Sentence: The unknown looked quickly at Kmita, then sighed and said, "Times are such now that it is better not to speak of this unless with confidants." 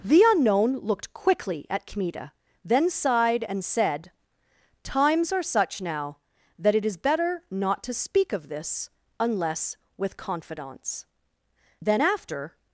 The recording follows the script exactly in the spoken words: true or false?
false